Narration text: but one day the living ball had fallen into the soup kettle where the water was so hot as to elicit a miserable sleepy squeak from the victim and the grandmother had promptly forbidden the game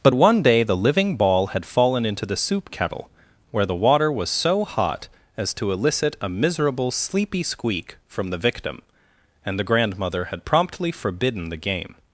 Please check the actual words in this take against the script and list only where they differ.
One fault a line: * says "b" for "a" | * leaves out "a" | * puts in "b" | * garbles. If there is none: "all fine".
all fine